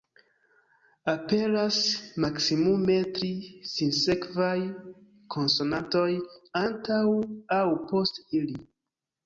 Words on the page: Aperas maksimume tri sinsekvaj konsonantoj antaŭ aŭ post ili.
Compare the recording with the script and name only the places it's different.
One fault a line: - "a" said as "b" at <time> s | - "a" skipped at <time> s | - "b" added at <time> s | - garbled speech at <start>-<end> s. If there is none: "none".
none